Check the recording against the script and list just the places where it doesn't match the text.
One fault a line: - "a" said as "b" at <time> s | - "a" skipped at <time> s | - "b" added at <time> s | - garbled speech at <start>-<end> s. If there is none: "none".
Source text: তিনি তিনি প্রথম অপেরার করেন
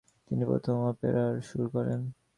- "তিনি" skipped at 0.4 s
- "সুর" added at 1.4 s